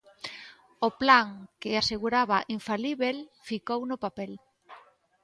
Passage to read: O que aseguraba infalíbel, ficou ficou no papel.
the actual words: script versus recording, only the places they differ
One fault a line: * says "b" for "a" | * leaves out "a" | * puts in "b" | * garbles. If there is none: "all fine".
* puts in "plan"
* leaves out "ficou"